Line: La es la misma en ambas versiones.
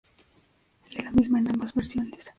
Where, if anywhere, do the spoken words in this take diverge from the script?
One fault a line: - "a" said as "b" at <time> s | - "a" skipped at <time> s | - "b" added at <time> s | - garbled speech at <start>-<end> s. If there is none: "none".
none